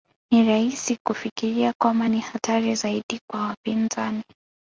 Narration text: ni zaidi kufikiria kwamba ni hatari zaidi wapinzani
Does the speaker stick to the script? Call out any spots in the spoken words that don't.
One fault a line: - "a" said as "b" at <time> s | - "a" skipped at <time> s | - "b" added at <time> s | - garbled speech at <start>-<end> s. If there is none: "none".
- "zaidi" said as "rahisi" at 0.5 s
- "kwa" added at 3.3 s